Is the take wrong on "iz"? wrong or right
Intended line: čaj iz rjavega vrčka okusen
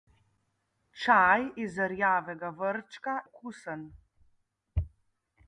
right